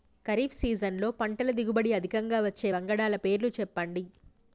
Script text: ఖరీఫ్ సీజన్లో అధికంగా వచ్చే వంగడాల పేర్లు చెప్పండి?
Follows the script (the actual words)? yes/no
no